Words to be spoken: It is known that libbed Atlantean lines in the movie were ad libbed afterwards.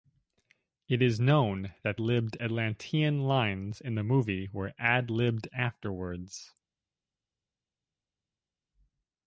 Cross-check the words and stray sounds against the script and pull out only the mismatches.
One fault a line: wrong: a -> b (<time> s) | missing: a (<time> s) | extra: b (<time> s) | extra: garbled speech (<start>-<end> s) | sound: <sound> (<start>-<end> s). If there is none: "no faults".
no faults